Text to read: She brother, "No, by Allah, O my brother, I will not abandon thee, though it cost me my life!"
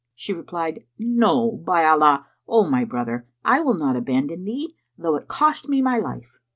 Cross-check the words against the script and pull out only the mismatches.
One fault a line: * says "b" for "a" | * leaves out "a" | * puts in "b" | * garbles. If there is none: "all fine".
* says "replied" for "brother"